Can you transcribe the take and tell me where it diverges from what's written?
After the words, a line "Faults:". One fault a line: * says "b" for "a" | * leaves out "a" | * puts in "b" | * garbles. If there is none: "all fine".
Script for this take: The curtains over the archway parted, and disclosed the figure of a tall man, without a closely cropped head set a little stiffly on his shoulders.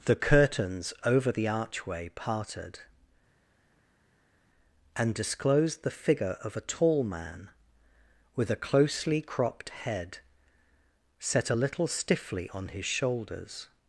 The curtains over the archway parted, and disclosed the figure of a tall man, with a closely cropped head set a little stiffly on his shoulders.
Faults:
* says "with" for "without"